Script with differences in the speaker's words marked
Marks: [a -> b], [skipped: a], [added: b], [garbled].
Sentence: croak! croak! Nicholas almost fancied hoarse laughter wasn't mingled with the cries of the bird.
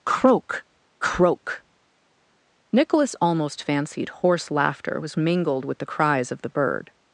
croak! croak! Nicholas almost fancied hoarse laughter [wasn't -> was] mingled with the cries of the bird.